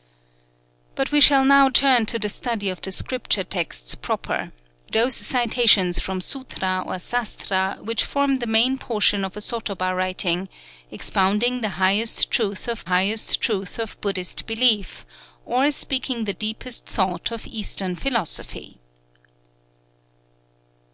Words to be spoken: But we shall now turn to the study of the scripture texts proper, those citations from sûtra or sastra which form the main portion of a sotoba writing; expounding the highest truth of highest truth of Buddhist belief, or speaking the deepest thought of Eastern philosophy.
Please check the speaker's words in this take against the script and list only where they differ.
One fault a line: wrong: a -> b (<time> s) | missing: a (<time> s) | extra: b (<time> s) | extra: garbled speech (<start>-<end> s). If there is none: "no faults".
no faults